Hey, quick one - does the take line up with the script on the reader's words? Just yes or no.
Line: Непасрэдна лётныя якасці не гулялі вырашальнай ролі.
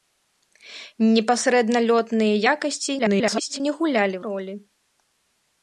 no